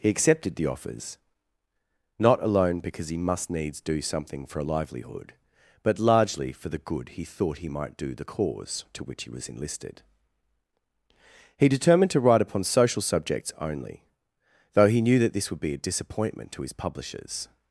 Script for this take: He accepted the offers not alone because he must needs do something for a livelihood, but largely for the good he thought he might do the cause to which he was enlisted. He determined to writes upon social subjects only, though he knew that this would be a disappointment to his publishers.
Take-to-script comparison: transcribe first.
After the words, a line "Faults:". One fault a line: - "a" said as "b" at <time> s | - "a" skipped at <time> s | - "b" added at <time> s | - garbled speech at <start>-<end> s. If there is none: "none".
He accepted the offers not alone because he must needs do something for a livelihood, but largely for the good he thought he might do the cause to which he was enlisted. He determined to write upon social subjects only, though he knew that this would be a disappointment to his publishers.
Faults:
- "writes" said as "write" at 12.2 s